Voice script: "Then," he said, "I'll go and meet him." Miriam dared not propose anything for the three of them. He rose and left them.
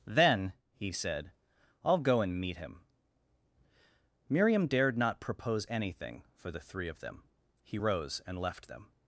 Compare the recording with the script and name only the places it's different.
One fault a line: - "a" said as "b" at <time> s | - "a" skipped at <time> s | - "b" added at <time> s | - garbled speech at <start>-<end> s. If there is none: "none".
none